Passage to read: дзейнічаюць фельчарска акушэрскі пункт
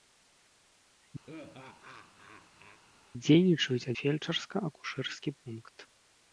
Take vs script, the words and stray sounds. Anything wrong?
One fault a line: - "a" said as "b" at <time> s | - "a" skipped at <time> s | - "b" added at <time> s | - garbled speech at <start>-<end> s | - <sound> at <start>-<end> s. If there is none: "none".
- laugh at 1.3-2.8 s